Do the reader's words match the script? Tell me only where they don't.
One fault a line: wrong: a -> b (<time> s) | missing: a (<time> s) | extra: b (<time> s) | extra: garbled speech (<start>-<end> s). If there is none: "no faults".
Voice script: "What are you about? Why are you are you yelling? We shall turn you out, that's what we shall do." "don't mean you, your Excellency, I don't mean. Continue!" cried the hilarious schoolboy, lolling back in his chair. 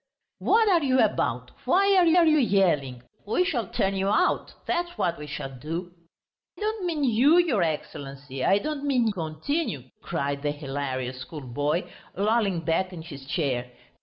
no faults